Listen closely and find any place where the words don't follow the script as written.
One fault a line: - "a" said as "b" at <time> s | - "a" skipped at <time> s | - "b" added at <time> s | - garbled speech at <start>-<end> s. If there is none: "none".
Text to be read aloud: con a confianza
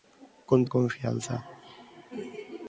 none